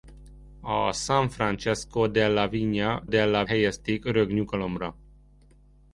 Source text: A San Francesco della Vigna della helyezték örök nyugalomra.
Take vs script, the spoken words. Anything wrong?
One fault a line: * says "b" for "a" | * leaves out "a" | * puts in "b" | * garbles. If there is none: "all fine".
all fine